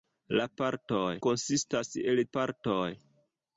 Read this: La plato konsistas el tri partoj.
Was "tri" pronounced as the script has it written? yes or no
no